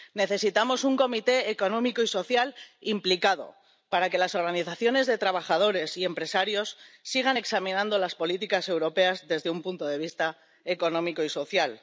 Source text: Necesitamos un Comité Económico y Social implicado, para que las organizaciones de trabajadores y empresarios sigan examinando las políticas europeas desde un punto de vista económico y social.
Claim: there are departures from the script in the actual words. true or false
false